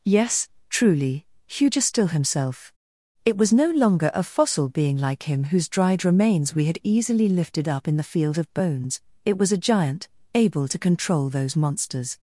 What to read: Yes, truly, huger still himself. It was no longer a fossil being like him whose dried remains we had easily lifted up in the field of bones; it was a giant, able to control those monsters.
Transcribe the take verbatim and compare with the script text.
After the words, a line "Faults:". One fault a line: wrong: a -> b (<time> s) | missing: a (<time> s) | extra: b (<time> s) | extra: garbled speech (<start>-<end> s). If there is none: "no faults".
Yes, truly, huger still himself. It was no longer a fossil being like him whose dried remains we had easily lifted up in the field of bones; it was a giant, able to control those monsters.
Faults:
no faults